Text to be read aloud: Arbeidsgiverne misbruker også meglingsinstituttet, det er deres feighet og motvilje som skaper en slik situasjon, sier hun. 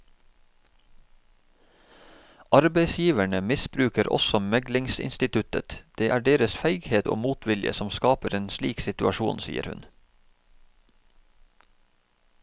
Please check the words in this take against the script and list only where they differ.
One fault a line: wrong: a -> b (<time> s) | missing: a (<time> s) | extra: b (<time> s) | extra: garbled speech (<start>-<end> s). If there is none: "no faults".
no faults